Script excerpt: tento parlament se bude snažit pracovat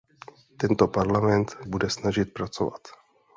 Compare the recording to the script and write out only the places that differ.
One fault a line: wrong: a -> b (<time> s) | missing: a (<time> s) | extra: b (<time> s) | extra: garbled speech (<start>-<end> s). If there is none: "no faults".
missing: se (1.6 s)